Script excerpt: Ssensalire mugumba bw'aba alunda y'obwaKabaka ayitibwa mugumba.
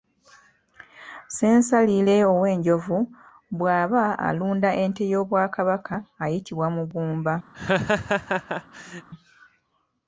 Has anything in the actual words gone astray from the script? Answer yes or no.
yes